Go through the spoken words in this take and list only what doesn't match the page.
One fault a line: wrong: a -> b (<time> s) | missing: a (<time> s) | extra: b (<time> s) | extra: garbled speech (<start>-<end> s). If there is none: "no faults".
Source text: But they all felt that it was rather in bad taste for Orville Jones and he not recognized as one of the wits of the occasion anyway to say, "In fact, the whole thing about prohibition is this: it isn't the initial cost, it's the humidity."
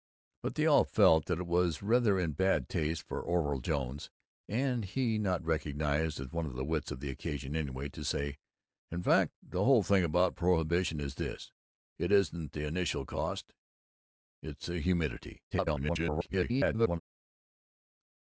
extra: garbled speech (15.5-17.0 s)